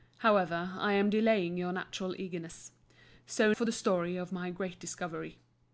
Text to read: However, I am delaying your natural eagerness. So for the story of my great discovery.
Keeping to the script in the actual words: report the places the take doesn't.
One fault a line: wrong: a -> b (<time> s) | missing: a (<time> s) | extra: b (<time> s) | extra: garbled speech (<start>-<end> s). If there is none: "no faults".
no faults